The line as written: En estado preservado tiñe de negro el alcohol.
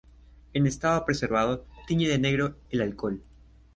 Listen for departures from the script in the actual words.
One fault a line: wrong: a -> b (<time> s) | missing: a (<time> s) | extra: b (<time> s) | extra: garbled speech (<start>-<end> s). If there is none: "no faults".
no faults